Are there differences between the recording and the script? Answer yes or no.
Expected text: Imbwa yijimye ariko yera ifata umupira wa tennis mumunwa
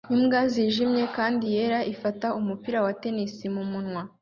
yes